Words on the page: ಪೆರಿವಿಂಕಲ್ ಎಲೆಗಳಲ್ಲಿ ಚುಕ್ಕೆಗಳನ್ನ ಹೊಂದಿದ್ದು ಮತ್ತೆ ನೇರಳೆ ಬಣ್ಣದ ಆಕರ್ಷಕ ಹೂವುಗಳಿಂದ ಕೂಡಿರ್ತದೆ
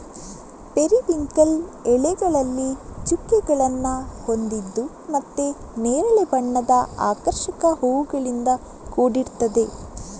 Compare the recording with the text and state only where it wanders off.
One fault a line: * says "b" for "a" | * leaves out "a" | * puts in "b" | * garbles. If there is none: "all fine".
all fine